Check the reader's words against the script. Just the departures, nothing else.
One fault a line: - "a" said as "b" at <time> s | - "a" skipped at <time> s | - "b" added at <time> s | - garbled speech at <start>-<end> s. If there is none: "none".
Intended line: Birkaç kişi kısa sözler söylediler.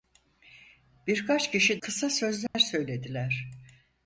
none